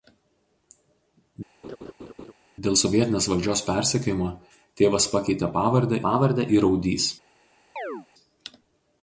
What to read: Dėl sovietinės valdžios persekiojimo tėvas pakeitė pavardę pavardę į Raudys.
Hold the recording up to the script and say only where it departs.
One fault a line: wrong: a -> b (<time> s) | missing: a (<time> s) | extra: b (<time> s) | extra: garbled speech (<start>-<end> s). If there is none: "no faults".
no faults